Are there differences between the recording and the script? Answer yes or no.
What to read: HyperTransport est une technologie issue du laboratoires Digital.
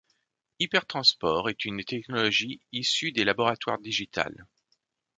yes